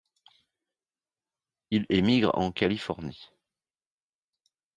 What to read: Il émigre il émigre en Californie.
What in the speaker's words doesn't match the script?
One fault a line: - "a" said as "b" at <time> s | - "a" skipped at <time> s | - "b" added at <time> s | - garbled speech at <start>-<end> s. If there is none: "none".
- "il émigre" skipped at 2.3 s